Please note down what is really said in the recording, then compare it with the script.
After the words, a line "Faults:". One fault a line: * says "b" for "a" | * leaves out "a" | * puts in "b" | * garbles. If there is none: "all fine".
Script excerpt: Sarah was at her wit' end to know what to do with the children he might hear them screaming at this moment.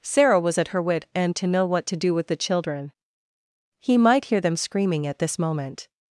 Sarah was at her wit' end to know what to do with the children he might hear them screaming at this moment.
Faults:
all fine